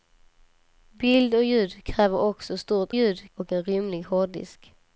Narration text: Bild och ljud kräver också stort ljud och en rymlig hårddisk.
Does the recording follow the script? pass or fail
pass